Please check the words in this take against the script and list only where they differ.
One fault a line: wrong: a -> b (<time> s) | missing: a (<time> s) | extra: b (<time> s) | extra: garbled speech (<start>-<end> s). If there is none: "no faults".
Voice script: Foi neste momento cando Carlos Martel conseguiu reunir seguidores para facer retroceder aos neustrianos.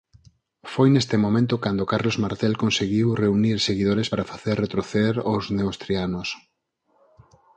no faults